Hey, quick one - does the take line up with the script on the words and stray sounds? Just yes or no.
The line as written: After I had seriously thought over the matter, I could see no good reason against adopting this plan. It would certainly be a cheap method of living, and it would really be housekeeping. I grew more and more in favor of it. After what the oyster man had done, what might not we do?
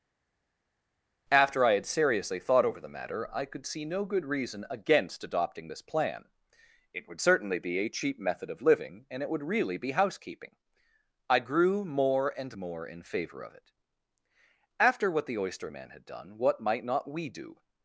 yes